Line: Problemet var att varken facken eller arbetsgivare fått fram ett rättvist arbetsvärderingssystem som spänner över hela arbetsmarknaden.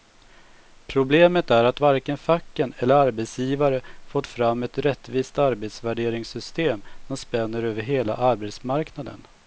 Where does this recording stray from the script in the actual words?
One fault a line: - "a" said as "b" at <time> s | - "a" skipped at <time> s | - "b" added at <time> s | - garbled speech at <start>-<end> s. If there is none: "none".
- "var" said as "är" at 1.5 s